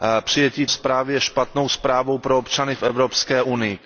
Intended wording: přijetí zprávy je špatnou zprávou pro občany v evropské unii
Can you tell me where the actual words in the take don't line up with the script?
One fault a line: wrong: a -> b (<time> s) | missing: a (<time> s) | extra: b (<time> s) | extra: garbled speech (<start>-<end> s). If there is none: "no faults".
no faults